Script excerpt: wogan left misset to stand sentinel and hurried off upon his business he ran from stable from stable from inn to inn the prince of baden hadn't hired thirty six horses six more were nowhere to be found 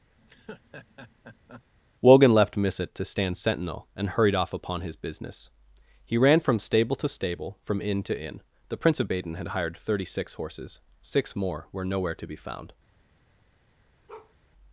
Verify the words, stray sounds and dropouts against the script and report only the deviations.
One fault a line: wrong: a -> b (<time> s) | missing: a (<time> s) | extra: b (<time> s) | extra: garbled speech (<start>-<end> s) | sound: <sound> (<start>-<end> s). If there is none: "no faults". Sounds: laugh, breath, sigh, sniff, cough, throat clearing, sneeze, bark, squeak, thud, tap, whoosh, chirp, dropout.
sound: laugh (0.2-1.6 s)
wrong: from -> to (6.9 s)
wrong: hadn't -> had (9.3 s)
sound: bark (14.1-14.3 s)